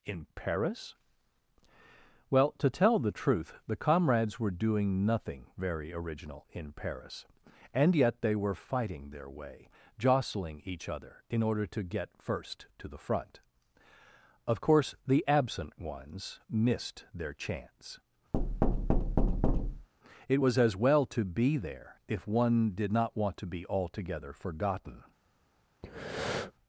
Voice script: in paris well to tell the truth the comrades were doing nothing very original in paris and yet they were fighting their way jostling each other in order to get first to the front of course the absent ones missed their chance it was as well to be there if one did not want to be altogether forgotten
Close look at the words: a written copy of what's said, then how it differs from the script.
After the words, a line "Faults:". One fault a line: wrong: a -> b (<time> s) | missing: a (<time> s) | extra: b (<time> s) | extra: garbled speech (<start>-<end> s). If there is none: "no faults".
in paris well to tell the truth the comrades were doing nothing very original in paris and yet they were fighting their way jostling each other in order to get first to the front of course the absent ones missed their chance it was as well to be there if one did not want to be altogether forgotten
Faults:
no faults